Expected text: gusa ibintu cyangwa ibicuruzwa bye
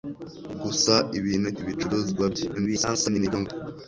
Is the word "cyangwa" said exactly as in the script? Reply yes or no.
no